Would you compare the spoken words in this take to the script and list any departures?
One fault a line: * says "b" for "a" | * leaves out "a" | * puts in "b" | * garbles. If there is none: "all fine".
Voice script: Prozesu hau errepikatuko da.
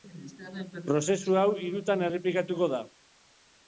* puts in "hirutan"